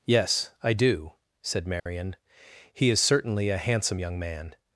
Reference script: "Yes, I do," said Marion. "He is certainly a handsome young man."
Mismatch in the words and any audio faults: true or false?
true